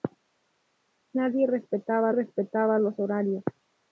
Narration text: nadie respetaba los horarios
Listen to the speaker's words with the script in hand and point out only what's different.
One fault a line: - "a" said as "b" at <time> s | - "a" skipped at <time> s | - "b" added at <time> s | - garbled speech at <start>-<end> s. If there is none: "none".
- "respetaba" added at 2.1 s